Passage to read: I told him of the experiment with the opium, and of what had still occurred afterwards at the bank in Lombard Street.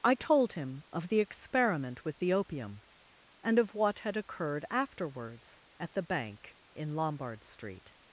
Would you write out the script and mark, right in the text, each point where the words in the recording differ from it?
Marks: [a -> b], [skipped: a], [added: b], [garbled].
I told him of the experiment with the opium, and of what had [skipped: still] occurred afterwards at the bank in Lombard Street.